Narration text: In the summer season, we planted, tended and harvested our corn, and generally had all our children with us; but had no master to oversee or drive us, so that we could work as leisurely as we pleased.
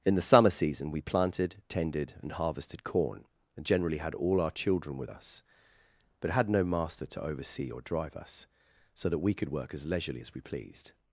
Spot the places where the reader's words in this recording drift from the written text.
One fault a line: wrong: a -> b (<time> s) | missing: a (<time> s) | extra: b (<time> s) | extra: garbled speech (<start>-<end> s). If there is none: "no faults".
missing: our (2.8 s)